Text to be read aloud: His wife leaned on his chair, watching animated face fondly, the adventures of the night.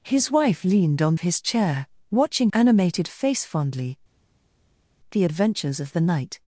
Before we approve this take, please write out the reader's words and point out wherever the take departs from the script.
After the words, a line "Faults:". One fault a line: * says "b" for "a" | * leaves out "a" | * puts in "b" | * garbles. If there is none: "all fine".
His wife leaned on his chair, watching animated face fondly, the adventures of the night.
Faults:
all fine